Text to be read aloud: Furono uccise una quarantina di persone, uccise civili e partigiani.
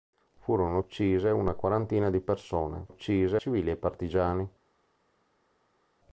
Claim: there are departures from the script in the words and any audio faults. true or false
false